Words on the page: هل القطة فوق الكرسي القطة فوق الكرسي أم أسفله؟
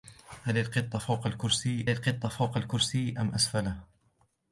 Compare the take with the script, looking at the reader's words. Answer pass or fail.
pass